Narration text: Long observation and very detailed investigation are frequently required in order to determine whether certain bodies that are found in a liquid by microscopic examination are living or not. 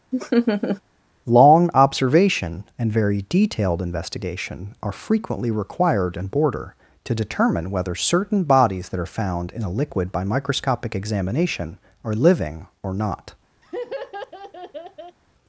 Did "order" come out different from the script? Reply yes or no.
yes